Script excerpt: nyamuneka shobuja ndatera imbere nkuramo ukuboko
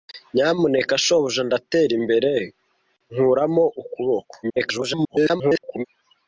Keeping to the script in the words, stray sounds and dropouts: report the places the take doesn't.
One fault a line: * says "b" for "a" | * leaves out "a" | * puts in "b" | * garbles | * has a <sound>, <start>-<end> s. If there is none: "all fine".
* garbles